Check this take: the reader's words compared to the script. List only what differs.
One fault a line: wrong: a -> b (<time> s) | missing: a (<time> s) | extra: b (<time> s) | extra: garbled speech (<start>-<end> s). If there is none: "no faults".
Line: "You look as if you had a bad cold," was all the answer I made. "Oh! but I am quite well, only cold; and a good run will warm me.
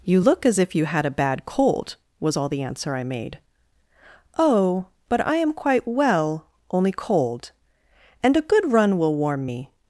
no faults